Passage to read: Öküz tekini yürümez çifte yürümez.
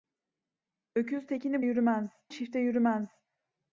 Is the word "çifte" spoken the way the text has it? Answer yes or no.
yes